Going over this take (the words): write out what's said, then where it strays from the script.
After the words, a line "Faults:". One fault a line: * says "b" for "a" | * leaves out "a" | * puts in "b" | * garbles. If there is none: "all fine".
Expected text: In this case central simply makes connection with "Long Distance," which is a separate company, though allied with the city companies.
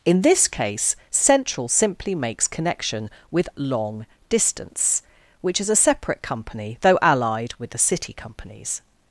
In this case central simply makes connection with "Long Distance," which is a separate company, though allied with the city companies.
Faults:
all fine